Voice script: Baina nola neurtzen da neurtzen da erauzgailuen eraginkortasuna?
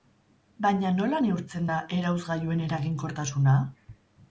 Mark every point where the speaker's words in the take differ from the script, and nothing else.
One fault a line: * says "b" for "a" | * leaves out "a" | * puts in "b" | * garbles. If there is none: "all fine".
* leaves out "neurtzen da"